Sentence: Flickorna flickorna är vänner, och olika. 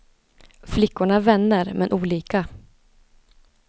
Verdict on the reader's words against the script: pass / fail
fail